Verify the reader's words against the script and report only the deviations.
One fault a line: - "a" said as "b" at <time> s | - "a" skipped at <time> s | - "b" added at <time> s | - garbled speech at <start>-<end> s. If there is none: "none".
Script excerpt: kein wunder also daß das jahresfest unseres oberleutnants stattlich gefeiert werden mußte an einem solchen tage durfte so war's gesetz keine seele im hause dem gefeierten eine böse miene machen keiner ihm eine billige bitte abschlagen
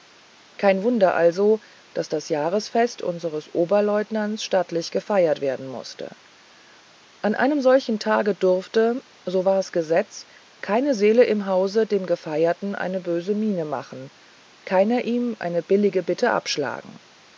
none